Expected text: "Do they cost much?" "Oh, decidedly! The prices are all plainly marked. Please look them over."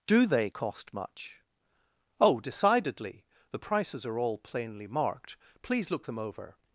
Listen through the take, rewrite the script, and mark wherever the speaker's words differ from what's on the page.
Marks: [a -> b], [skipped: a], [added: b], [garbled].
"Do they cost much?" "Oh, decidedly! The prices are all plainly marked. Please look them over."